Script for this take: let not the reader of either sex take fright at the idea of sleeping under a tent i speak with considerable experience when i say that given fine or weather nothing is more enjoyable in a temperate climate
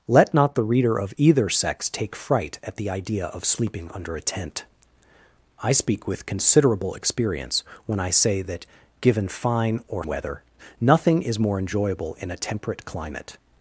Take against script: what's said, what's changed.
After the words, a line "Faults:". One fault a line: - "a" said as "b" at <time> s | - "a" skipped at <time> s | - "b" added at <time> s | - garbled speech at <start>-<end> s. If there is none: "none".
let not the reader of either sex take fright at the idea of sleeping under a tent i speak with considerable experience when i say that given fine or weather nothing is more enjoyable in a temperate climate
Faults:
none